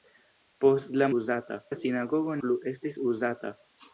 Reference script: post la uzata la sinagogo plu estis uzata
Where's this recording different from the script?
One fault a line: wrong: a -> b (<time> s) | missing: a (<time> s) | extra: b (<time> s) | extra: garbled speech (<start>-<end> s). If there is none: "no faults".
no faults